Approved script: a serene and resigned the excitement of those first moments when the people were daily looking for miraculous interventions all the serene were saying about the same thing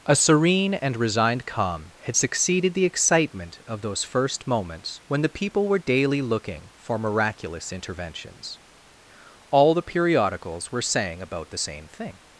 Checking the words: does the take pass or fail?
fail